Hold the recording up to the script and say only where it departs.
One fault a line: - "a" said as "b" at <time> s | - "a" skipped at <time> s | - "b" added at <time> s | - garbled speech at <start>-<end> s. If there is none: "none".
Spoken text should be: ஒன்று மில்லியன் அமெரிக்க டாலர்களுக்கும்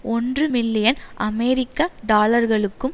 none